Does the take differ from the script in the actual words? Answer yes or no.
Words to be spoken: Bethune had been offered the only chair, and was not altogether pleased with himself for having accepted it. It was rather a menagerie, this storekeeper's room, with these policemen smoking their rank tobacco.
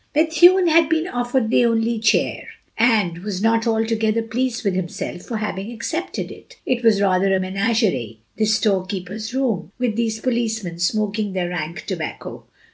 no